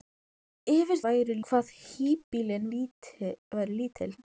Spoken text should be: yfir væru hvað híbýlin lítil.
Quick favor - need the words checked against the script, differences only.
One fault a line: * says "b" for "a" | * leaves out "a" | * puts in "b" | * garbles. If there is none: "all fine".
all fine